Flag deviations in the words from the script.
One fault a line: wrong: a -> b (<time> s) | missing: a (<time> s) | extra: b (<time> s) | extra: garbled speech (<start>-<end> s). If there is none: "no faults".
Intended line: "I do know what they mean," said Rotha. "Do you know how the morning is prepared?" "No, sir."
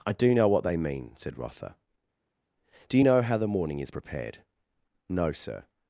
no faults